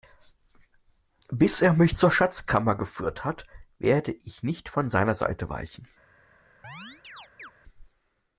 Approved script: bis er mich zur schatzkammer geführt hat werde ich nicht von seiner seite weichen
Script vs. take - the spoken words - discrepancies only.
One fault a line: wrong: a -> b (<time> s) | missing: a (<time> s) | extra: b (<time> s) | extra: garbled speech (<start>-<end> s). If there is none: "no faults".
no faults